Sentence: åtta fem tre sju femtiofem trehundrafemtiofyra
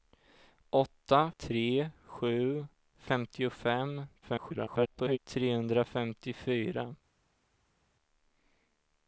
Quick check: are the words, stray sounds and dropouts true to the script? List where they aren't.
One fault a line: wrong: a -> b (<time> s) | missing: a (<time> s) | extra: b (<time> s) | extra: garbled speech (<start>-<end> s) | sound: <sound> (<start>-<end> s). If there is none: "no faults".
missing: fem (1.3 s)
extra: garbled speech (4.2-5.2 s)